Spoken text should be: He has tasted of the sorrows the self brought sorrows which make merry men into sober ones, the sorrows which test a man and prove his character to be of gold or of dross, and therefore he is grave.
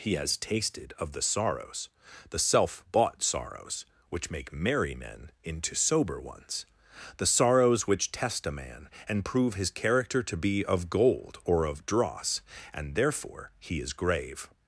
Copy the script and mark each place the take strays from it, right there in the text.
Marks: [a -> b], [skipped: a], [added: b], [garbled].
He has tasted of the sorrows the self [brought -> bought] sorrows which make merry men into sober ones, the sorrows which test a man and prove his character to be of gold or of dross, and therefore he is grave.